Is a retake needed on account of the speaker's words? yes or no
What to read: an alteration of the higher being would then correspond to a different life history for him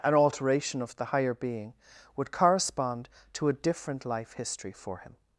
yes